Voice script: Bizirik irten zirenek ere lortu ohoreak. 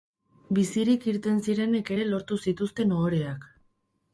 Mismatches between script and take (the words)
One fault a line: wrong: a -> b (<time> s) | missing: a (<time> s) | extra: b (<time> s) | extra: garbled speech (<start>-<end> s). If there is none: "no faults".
extra: zituzten (2.5 s)